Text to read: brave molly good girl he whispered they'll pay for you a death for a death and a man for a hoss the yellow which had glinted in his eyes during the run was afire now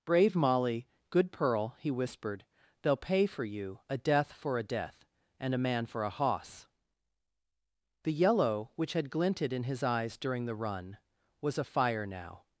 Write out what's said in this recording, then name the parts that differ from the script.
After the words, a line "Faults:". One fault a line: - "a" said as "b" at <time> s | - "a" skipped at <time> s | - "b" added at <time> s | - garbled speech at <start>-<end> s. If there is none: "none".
brave molly good pearl he whispered they'll pay for you a death for a death and a man for a hoss the yellow which had glinted in his eyes during the run was afire now
Faults:
- "girl" said as "pearl" at 1.3 s